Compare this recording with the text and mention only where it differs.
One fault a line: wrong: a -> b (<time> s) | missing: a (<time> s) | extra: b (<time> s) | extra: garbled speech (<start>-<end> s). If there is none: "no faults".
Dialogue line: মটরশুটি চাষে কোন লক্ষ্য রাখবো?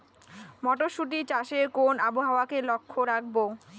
extra: আবহাওয়াকে (2.1 s)